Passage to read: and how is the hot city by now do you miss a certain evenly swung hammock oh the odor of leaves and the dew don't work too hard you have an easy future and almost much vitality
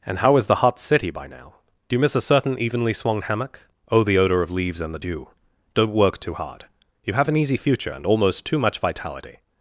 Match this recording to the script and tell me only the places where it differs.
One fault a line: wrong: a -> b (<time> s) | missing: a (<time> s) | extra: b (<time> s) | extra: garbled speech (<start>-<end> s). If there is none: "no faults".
extra: too (8.4 s)